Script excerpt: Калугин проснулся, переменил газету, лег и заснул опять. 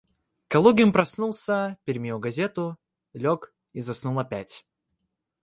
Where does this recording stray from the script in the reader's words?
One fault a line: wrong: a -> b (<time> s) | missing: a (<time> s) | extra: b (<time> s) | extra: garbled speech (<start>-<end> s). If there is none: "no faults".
no faults